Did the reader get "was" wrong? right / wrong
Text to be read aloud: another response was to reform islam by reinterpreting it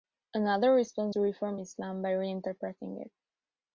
wrong